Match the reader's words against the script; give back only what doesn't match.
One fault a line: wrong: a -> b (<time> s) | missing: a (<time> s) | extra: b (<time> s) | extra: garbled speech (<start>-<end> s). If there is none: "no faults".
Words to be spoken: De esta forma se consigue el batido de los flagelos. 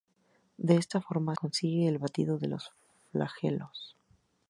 missing: se (1.4 s)